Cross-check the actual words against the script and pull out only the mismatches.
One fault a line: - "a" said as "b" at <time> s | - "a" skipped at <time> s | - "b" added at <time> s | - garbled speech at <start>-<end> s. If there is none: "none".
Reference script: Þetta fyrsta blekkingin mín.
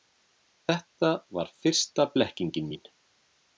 - "var" added at 1.4 s